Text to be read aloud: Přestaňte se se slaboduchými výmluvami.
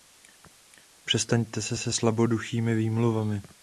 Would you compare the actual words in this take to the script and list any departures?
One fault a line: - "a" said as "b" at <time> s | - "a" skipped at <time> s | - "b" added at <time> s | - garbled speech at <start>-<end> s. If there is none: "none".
none